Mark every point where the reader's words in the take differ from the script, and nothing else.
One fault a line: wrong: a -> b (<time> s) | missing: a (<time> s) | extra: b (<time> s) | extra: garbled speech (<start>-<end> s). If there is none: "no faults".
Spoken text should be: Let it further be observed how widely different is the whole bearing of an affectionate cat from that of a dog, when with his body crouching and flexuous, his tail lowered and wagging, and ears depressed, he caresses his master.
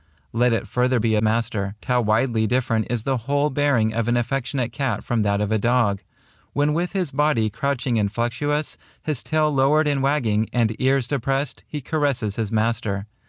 wrong: observed -> master (1.2 s)